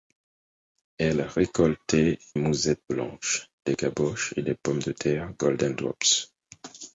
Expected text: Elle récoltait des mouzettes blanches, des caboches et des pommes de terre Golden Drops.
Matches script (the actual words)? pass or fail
fail